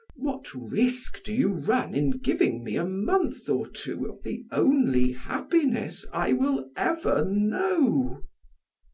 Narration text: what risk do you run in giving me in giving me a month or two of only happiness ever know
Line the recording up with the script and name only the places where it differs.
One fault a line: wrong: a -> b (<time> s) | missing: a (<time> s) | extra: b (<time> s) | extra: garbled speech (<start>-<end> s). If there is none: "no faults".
missing: in giving me (2.8 s)
extra: the (4.2 s)
extra: i will (6.1 s)